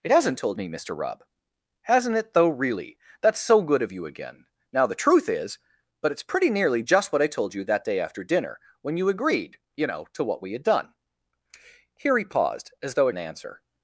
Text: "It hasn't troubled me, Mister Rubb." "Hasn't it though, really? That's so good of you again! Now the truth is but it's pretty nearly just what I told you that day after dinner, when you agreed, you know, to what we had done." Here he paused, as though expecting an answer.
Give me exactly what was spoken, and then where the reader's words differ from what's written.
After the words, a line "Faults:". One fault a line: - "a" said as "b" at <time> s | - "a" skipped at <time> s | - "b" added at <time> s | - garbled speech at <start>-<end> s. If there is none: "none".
"It hasn't told me, Mister Rubb." "Hasn't it though, really? That's so good of you again! Now the truth is but it's pretty nearly just what I told you that day after dinner, when you agreed, you know, to what we had done." Here he paused, as though an answer.
Faults:
- "troubled" said as "told" at 0.3 s
- "expecting" skipped at 13.1 s